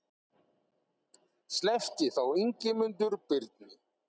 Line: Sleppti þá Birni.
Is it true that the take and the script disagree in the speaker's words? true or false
true